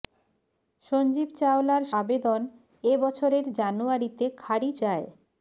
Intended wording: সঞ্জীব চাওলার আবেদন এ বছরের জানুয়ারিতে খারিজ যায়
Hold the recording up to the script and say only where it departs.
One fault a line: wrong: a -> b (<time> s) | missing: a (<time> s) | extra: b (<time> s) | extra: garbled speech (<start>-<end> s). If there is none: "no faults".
no faults